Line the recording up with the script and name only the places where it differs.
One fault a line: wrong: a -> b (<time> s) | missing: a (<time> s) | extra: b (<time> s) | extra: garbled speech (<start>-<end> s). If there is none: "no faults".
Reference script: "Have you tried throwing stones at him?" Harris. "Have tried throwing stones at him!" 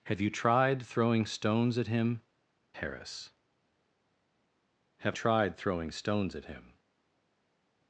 no faults